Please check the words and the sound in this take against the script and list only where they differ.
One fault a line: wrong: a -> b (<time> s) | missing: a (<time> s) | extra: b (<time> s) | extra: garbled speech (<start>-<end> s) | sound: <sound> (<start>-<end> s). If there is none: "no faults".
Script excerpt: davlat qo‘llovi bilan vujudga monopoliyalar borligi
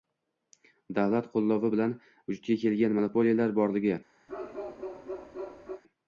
extra: kelgan (2.6 s)
sound: bark (4.3-5.8 s)